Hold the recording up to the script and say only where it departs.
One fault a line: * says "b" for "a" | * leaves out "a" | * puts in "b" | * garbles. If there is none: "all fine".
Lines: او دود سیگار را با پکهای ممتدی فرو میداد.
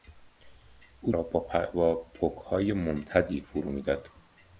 * leaves out "دود سیگار"